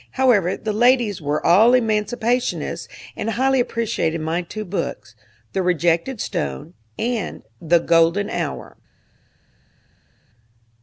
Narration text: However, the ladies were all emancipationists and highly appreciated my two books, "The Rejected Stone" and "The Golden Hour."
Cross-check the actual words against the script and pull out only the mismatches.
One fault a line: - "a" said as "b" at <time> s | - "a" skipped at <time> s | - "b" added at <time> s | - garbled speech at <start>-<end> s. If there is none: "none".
none